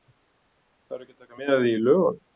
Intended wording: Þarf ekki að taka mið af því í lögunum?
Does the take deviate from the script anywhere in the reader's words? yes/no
no